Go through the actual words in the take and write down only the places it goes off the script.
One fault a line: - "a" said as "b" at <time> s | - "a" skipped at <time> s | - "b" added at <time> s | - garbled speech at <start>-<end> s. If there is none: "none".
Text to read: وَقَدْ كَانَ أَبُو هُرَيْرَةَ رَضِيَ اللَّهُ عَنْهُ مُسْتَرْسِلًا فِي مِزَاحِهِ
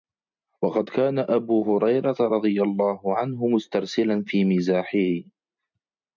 none